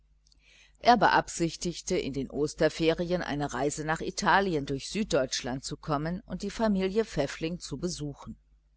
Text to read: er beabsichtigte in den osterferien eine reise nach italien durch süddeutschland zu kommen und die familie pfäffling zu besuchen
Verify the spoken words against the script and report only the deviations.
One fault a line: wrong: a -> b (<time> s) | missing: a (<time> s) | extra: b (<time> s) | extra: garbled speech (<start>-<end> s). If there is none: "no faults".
no faults